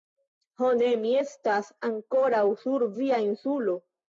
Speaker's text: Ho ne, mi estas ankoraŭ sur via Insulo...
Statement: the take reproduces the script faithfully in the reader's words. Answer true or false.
true